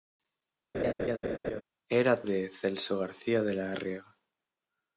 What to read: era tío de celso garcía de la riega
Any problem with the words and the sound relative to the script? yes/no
yes